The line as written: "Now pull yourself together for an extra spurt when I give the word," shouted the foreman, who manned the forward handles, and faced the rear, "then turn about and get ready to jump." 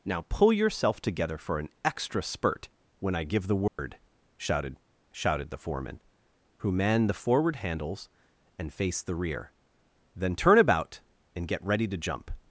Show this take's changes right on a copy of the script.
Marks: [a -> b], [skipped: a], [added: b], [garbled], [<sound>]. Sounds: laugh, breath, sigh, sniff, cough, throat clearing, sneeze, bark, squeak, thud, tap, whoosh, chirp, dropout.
"Now pull yourself together for an extra spurt when I give the word," [dropout] shouted [added: shouted] the foreman, who manned the forward handles, and faced the rear, "then turn about and get ready to jump."